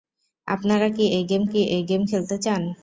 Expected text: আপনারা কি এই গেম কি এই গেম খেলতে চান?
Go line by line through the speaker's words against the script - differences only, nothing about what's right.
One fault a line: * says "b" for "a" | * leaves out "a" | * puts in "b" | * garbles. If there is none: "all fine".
all fine